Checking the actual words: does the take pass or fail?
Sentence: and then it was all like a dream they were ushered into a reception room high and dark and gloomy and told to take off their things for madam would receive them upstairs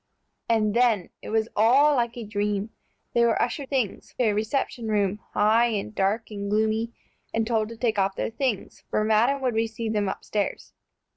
fail